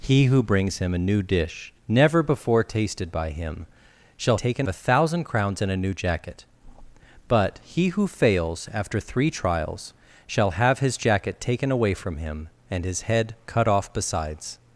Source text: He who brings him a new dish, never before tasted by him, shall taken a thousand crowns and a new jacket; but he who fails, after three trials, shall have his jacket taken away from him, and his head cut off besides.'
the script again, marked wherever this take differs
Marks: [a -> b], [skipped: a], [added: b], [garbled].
He who brings him a new dish, never before tasted by him, shall taken a thousand crowns and a new jacket; but he who fails, after three trials, shall have his jacket taken away from him, and his head cut off besides.'